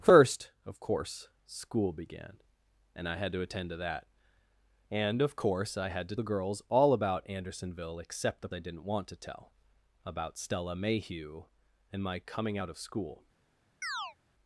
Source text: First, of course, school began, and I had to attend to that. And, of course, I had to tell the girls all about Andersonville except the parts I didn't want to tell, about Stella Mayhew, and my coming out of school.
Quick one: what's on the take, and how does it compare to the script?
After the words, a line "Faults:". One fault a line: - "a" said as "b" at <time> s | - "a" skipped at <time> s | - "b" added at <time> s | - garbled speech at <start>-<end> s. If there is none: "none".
First, of course, school began, and I had to attend to that. And, of course, I had to the girls all about Andersonville except the I didn't want to tell, about Stella Mayhew, and my coming out of school.
Faults:
- "tell" skipped at 6.2 s
- "parts" skipped at 8.5 s